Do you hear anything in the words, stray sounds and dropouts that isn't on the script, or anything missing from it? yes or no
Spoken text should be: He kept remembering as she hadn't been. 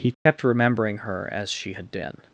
yes